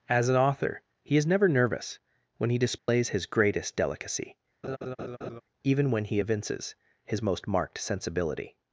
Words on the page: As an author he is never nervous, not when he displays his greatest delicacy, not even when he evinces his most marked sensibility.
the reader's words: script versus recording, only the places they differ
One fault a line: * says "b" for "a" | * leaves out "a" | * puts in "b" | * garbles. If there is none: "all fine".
* leaves out "not"
* leaves out "not"